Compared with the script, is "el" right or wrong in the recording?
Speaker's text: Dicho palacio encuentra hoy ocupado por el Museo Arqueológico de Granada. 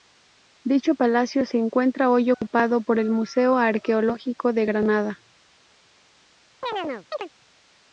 right